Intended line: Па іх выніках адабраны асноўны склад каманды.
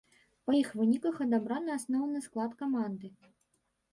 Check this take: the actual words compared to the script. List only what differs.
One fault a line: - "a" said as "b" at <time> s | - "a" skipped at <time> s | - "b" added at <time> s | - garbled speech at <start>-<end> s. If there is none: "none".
none